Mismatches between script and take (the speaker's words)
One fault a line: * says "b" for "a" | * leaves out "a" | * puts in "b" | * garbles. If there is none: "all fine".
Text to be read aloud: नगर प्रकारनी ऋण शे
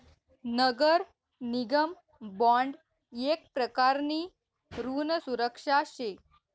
* puts in "निगम बॉन्ड येक"
* puts in "सुरक्षा"